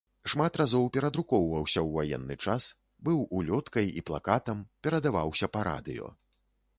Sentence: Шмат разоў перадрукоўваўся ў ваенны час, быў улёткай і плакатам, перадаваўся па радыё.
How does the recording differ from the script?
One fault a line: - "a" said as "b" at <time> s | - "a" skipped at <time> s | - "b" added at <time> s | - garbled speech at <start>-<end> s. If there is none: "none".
none